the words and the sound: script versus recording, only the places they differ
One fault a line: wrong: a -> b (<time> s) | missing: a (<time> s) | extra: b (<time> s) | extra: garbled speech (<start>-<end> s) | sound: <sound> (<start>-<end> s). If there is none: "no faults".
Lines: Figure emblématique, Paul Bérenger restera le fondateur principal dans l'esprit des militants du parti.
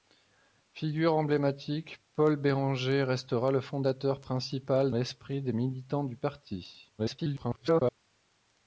missing: dans (4.9 s)
extra: garbled speech (7.0-8.0 s)